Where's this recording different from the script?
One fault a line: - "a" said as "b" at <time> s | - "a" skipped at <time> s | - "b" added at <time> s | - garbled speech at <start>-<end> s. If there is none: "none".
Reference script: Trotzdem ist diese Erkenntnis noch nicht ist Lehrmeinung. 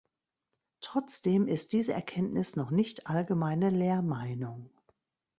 - "ist" said as "allgemeine" at 3.0 s